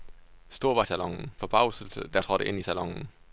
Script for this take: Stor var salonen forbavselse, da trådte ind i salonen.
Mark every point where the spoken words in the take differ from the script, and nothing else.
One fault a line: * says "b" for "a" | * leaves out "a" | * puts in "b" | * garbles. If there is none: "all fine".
all fine